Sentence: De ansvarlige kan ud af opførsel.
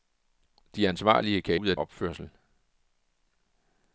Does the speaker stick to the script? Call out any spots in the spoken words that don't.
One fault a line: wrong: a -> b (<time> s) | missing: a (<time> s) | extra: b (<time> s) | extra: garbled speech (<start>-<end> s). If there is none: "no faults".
no faults